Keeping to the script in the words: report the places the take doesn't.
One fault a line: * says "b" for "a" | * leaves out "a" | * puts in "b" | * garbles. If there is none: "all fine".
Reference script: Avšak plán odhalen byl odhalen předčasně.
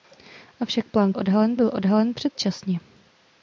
all fine